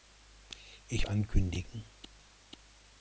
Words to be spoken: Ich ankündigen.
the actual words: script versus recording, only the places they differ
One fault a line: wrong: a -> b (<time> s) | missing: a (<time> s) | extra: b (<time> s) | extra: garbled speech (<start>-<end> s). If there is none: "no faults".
no faults